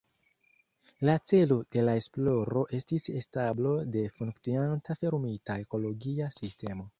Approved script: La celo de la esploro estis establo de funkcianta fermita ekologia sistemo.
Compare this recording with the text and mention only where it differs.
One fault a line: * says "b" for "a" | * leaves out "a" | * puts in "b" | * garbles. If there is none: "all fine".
all fine